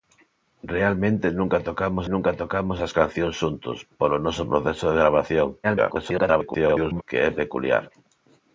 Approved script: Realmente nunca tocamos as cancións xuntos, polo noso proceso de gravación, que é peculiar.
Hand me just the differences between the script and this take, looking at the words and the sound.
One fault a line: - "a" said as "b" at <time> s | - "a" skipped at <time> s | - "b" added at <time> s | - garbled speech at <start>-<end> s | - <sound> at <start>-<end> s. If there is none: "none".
- "nunca tocamos" added at 2.1 s
- garbled speech at 5.6-7.0 s